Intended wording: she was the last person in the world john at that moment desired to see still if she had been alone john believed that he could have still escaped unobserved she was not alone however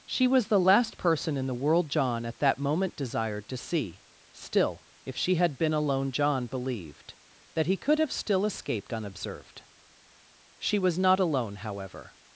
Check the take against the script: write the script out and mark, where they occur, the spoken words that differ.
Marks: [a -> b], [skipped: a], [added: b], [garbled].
she was the last person in the world john at that moment desired to see still if she had been alone john believed that he could have still escaped unobserved she was not alone however